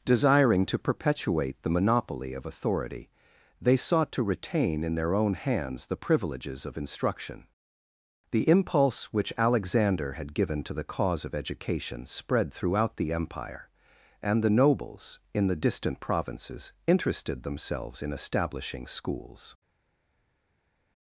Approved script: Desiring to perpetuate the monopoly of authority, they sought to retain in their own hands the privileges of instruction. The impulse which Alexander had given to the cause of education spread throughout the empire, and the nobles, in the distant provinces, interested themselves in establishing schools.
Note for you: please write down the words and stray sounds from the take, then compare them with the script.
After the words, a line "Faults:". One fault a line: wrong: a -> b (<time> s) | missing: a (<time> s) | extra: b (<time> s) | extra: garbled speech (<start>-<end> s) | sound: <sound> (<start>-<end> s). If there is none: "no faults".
Desiring to perpetuate the monopoly of authority, they sought to retain in their own hands the privileges of instruction. The impulse which Alexander had given to the cause of education spread throughout the empire, and the nobles, in the distant provinces, interested themselves in establishing schools.
Faults:
no faults